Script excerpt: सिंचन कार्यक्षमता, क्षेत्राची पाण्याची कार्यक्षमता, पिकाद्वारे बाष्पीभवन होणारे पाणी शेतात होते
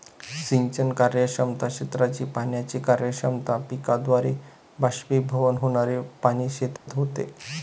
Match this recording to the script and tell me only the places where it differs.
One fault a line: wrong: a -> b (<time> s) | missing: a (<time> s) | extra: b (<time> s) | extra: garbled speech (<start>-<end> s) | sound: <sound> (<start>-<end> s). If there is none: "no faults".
sound: dropout (6.8-6.9 s)